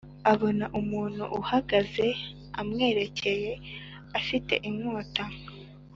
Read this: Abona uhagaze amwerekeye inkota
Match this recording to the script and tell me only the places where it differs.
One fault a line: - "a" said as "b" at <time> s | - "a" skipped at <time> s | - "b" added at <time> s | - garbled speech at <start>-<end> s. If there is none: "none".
- "umuntu" added at 0.8 s
- "afite" added at 4.2 s